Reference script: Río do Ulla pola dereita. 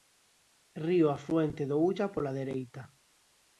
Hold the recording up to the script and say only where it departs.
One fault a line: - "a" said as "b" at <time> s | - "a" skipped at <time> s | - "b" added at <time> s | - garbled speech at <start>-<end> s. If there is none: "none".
- "afluente" added at 1.2 s